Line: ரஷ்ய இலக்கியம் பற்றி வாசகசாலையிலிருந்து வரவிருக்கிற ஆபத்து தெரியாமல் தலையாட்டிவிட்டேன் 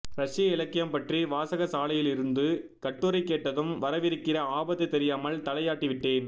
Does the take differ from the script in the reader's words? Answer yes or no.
yes